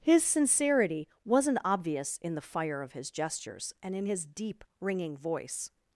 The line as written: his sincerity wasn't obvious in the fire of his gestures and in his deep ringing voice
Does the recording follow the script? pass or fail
pass